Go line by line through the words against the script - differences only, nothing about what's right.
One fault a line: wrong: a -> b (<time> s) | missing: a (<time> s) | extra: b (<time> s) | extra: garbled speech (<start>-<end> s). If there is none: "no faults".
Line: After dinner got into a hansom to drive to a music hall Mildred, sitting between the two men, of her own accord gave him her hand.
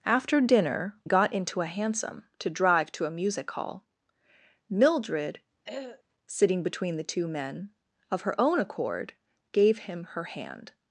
no faults